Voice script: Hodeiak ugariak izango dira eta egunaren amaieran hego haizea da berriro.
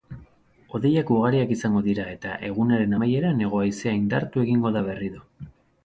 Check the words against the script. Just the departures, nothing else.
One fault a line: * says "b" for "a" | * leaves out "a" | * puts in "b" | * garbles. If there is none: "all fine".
* puts in "indartu egingo"